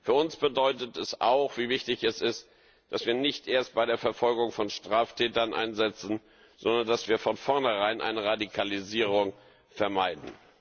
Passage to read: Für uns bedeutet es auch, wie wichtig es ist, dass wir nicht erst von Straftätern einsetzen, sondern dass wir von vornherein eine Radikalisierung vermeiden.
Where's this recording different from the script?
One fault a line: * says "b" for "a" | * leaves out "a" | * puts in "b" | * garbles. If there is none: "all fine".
* puts in "bei der Verfolgung"